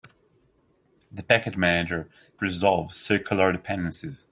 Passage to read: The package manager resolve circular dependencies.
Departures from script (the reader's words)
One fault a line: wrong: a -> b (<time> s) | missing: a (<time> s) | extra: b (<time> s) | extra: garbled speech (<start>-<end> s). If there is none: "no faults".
no faults